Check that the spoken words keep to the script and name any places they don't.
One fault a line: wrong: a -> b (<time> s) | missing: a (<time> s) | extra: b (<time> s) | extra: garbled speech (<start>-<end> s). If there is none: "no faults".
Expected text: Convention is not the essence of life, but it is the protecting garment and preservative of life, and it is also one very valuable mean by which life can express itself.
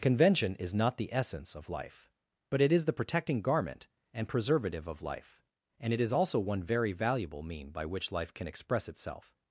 no faults